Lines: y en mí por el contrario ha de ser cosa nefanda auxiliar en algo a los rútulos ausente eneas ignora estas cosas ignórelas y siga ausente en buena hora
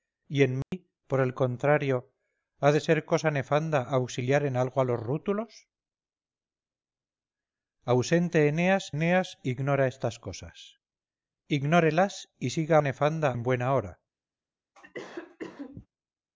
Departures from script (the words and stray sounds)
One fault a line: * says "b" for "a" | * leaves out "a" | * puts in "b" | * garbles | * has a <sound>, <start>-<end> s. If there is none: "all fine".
* has a dropout, 0.6-0.7 s
* puts in "eneas"
* says "nefanda" for "ausente"
* has a cough, 14.7-15.9 s